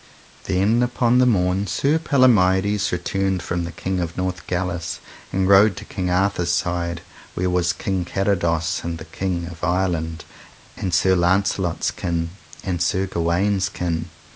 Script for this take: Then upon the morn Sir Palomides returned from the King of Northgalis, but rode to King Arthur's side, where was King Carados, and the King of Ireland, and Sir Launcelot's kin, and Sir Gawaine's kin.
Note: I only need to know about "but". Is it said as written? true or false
false